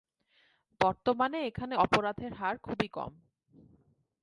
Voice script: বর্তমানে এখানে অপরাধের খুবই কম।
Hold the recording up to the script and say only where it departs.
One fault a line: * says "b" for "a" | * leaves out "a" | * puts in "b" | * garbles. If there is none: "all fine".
* puts in "হার"